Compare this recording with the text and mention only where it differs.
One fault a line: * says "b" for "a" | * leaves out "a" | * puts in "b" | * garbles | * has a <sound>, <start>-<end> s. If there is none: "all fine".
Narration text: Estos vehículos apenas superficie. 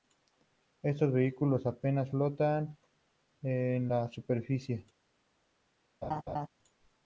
* puts in "flotan en la"
* has a laugh, 6.0-6.5 s